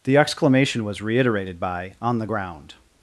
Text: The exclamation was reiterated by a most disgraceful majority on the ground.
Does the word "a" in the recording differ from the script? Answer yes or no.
yes